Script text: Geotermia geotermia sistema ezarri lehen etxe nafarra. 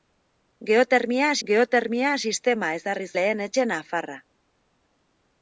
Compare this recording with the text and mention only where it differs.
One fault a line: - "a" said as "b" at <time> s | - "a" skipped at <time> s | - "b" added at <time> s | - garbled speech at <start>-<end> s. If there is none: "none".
none